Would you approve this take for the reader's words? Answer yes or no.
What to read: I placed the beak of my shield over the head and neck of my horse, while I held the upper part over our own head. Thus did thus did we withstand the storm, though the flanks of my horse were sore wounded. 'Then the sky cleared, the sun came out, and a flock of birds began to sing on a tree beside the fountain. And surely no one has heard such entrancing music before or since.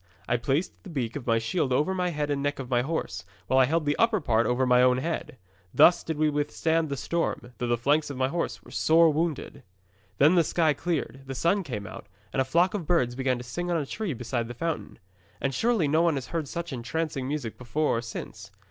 no